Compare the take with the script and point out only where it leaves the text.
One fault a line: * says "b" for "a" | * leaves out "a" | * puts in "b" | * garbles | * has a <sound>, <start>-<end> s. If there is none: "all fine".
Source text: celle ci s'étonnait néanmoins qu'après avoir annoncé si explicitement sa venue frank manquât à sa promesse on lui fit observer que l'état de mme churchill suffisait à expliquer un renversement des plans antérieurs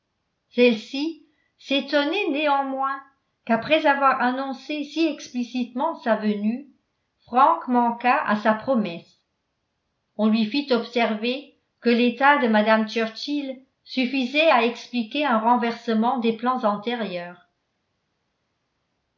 all fine